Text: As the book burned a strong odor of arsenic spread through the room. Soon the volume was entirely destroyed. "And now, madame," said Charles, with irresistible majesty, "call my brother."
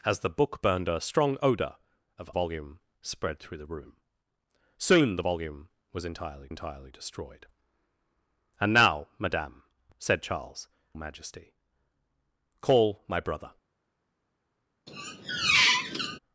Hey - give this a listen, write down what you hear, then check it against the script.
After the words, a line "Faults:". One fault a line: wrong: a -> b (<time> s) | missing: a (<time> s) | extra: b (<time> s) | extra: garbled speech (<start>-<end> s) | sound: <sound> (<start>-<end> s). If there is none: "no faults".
As the book burned a strong odor of volume spread through the room. Soon the volume was entirely entirely destroyed. "And now, madame," said Charles, majesty, "call my brother."
Faults:
wrong: arsenic -> volume (2.3 s)
extra: entirely (6.5 s)
missing: with irresistible (10.7 s)
sound: squeak (14.9-16.2 s)